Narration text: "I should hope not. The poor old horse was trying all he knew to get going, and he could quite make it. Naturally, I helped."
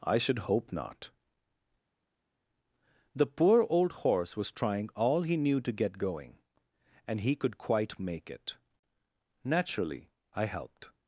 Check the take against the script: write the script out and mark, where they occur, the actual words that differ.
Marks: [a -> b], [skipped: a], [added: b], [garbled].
"I should hope not. The poor old horse was trying all he knew to get going, and he could quite make it. Naturally, I helped."